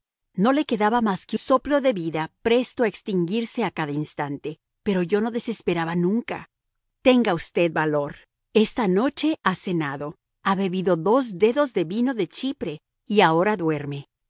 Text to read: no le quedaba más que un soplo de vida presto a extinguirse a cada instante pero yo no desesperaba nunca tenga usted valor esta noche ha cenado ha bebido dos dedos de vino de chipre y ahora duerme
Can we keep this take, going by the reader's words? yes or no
no